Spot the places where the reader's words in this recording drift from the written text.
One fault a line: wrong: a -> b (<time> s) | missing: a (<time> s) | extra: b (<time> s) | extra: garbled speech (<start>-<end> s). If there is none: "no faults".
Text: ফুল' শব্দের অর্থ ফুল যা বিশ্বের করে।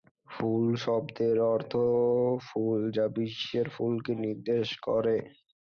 extra: ফুলকে নির্দেশ (3.8 s)